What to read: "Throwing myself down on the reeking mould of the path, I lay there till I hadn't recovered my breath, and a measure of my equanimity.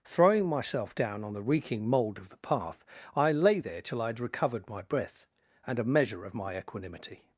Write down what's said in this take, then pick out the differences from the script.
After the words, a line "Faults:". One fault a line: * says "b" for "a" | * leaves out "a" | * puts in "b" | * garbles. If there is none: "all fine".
"Throwing myself down on the reeking mould of the path, I lay there till I had recovered my breath, and a measure of my equanimity.
Faults:
* says "had" for "hadn't"